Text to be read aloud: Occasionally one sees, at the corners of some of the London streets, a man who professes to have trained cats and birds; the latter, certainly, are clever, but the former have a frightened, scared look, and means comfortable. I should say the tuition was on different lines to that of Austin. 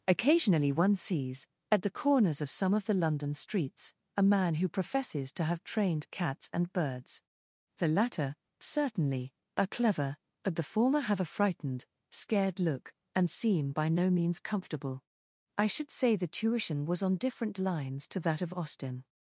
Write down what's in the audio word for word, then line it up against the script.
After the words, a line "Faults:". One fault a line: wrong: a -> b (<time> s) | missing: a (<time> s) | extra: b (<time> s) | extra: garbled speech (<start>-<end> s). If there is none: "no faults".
Occasionally one sees, at the corners of some of the London streets, a man who professes to have trained cats and birds; the latter, certainly, are clever, but the former have a frightened, scared look, and seem by no means comfortable. I should say the tuition was on different lines to that of Austin.
Faults:
extra: seem by no (13.3 s)